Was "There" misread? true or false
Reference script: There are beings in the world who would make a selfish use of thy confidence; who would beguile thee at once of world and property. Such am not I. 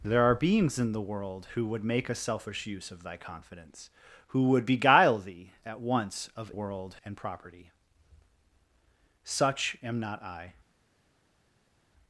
false